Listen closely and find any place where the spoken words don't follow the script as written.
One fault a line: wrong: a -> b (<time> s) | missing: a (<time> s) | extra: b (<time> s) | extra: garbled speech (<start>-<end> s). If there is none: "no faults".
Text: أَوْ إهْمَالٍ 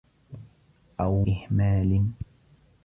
no faults